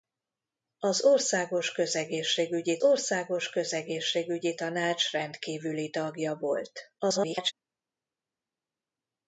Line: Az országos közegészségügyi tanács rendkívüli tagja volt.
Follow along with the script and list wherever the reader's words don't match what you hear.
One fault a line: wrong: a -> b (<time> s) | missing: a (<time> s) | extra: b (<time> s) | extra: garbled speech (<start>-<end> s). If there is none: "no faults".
extra: országos közegészségügyi (2.8 s)
extra: garbled speech (7.0-7.5 s)